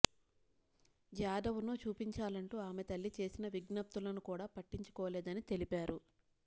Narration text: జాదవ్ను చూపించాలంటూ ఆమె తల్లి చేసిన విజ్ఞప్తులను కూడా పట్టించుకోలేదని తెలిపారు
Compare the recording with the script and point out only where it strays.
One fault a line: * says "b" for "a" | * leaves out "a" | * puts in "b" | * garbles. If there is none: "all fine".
all fine